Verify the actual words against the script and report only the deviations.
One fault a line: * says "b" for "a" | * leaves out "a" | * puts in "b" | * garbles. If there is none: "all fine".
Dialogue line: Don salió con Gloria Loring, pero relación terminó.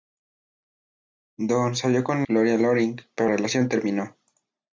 all fine